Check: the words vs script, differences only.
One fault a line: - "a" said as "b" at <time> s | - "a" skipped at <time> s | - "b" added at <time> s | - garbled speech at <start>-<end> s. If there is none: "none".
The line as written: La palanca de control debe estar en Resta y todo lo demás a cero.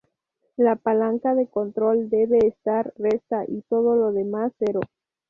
- "en" skipped at 2.9 s
- "a" skipped at 4.5 s